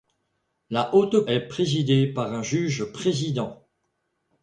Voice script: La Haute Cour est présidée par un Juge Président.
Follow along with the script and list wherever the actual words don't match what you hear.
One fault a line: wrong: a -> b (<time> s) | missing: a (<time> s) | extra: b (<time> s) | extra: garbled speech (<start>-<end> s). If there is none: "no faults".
missing: Cour (1.3 s)